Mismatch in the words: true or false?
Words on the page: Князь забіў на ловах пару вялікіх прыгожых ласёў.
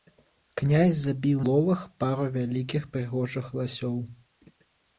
true